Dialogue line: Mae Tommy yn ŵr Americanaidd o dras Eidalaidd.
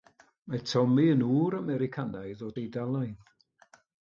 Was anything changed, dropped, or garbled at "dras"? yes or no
yes